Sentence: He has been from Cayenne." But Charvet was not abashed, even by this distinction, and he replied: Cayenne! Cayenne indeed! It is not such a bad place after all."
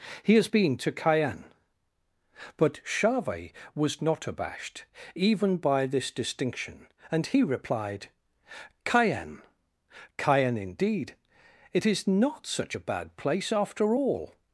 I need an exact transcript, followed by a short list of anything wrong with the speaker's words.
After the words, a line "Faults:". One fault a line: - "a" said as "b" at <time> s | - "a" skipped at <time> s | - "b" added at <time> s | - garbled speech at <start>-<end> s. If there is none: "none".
He has been to Cayenne." But Charvet was not abashed, even by this distinction, and he replied: Cayenne! Cayenne indeed! It is not such a bad place after all."
Faults:
- "from" said as "to" at 0.8 s